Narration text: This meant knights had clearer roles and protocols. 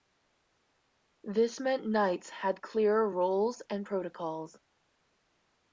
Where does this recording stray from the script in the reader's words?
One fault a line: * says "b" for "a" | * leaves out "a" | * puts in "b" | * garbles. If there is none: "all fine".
all fine